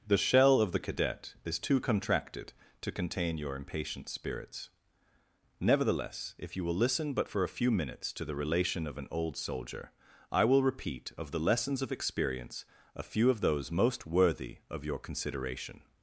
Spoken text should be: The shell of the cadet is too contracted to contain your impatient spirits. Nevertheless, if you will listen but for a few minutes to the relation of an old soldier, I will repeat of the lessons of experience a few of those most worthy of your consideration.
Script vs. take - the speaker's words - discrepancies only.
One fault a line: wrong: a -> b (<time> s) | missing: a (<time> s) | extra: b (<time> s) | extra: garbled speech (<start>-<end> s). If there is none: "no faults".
no faults